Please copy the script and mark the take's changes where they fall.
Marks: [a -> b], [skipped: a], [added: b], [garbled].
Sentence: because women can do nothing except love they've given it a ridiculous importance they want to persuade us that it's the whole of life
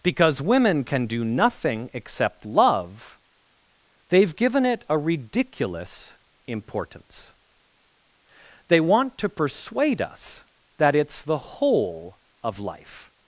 because women can do nothing except love they've given it a ridiculous importance they want to persuade us that it's the whole of life